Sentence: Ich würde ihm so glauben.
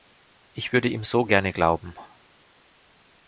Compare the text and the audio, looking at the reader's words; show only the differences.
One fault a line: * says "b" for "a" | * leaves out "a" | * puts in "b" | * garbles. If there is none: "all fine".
* puts in "gerne"